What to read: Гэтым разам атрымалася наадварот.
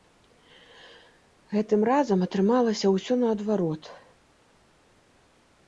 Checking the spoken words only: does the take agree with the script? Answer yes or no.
no